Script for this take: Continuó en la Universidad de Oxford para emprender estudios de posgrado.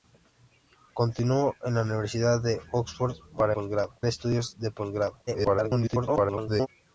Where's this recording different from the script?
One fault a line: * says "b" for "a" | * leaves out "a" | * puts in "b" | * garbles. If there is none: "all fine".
* says "posgrado" for "emprender"
* garbles